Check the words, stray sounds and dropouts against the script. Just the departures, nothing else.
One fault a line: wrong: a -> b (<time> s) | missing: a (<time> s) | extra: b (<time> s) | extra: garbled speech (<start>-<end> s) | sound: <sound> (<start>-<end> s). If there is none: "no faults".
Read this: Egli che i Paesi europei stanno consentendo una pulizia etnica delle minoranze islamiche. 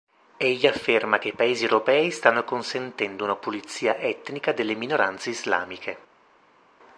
extra: afferma (0.6 s)